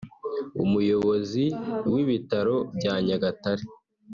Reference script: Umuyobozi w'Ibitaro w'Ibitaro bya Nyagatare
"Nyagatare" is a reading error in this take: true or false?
false